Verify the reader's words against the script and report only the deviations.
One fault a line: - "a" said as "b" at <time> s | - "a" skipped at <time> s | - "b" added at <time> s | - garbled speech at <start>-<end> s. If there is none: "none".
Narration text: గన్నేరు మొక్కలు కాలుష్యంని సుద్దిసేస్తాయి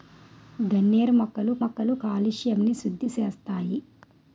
- "మొక్కలు" added at 1.6 s